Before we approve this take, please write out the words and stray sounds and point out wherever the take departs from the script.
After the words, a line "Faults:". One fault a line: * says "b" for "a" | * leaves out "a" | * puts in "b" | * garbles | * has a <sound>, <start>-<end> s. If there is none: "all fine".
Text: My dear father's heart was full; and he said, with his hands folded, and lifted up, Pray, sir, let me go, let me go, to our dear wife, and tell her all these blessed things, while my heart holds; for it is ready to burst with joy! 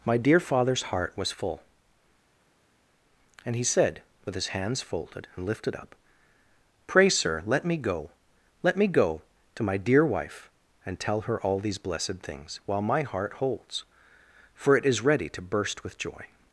My dear father's heart was full; and he said, with his hands folded, and lifted up, Pray, sir, let me go, let me go, to my dear wife, and tell her all these blessed things, while my heart holds; for it is ready to burst with joy!
Faults:
* says "my" for "our"